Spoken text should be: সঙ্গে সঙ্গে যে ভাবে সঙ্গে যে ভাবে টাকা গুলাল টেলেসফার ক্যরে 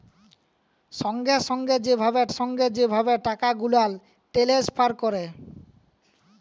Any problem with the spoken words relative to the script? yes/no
no